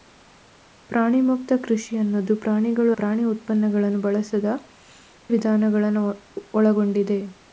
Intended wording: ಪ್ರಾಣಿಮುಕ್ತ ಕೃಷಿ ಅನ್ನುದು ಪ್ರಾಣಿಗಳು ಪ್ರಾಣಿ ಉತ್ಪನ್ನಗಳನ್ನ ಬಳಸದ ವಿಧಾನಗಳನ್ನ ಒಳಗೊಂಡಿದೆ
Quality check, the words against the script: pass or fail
pass